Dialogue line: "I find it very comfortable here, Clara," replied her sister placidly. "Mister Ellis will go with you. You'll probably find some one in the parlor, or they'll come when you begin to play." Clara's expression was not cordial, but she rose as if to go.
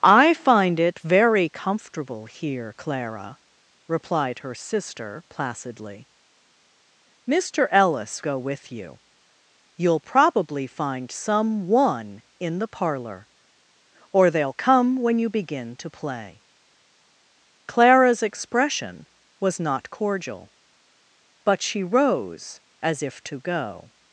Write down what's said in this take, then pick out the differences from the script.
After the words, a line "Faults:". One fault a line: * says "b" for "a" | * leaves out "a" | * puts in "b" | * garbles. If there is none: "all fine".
"I find it very comfortable here, Clara," replied her sister placidly. "Mister Ellis go with you. You'll probably find some one in the parlor, or they'll come when you begin to play." Clara's expression was not cordial, but she rose as if to go.
Faults:
* leaves out "will"